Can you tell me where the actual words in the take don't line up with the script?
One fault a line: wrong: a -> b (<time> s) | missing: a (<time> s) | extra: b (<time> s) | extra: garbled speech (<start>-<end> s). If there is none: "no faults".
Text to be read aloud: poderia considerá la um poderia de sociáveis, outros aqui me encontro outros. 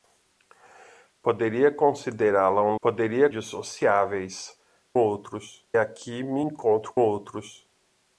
no faults